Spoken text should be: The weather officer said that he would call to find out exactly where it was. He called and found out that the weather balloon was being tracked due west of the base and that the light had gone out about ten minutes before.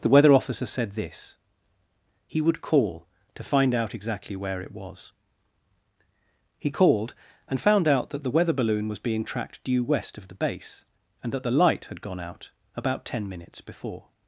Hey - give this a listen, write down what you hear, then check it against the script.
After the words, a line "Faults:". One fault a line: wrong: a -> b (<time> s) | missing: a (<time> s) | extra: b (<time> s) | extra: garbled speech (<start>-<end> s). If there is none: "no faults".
The weather officer said this he would call to find out exactly where it was. He called and found out that the weather balloon was being tracked due west of the base and that the light had gone out about ten minutes before.
Faults:
wrong: that -> this (0.9 s)